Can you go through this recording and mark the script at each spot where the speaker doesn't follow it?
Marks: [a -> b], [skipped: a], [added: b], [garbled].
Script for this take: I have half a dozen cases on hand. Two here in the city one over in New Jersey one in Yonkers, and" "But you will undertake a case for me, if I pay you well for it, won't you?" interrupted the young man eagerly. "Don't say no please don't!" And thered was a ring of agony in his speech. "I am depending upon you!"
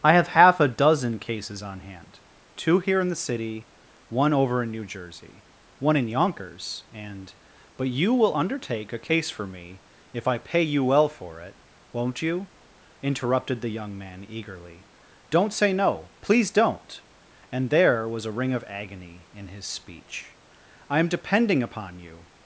I have half a dozen cases on hand. Two here in the city one over in New Jersey one in Yonkers, and" "But you will undertake a case for me, if I pay you well for it, won't you?" interrupted the young man eagerly. "Don't say no please don't!" And [thered -> there] was a ring of agony in his speech. "I am depending upon you!"